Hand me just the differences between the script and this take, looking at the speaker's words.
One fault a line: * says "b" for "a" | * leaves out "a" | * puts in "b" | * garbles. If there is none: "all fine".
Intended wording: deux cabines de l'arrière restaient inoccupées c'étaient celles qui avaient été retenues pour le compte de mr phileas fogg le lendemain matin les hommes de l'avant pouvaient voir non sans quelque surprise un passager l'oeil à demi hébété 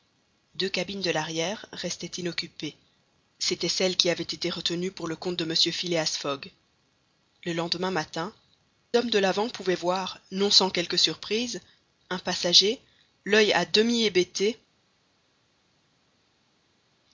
* leaves out "les"